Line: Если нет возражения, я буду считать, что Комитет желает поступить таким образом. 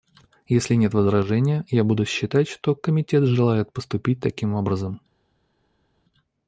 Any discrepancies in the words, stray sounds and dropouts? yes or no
no